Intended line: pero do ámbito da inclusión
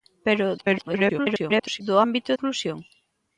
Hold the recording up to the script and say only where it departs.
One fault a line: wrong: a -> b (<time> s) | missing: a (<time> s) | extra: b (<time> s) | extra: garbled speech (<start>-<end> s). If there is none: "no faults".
extra: garbled speech (0.6-1.8 s)
missing: da (2.3 s)